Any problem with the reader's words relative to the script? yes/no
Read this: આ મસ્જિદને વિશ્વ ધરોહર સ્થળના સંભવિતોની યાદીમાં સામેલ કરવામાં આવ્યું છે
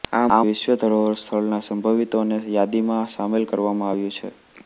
yes